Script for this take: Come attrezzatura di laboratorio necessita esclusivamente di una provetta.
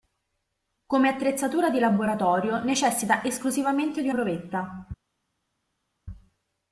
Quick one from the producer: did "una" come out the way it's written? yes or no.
no